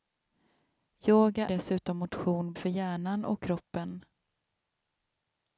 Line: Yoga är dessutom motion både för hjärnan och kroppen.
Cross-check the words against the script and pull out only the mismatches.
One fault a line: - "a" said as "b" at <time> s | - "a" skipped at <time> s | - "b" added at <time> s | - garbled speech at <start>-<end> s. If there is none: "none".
- "är" skipped at 1.5 s
- "både" skipped at 2.5 s